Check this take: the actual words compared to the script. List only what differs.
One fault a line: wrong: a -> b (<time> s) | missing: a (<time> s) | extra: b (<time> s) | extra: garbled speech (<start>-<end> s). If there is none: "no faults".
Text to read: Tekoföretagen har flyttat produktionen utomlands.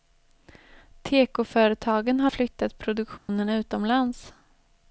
no faults